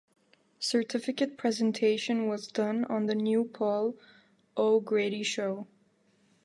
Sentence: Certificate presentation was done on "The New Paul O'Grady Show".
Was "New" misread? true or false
false